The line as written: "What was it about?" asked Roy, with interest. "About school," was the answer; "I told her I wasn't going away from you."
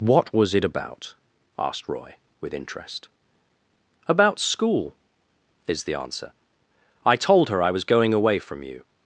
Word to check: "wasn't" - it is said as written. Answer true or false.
false